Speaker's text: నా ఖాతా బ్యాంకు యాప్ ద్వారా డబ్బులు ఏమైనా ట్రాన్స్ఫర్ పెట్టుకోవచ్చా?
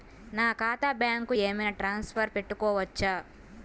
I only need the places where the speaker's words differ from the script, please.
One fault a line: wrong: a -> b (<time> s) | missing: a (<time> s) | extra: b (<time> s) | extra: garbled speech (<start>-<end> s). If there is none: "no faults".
missing: యాప్ ద్వారా డబ్బులు (1.3 s)